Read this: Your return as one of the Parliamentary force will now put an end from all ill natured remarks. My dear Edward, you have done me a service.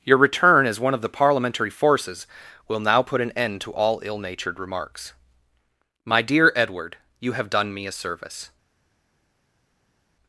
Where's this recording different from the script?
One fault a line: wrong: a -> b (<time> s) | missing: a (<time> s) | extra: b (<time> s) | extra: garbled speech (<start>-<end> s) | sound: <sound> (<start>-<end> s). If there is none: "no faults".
wrong: force -> forces (1.7 s)
wrong: from -> to (3.6 s)